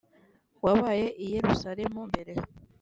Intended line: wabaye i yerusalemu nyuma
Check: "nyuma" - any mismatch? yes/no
yes